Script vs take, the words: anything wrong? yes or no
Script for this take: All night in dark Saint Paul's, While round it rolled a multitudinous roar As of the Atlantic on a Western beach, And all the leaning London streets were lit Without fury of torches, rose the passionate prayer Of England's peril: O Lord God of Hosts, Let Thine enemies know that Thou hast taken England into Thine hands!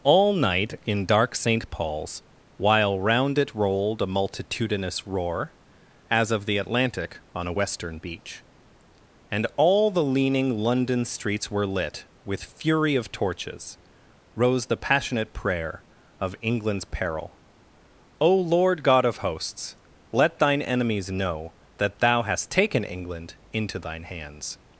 yes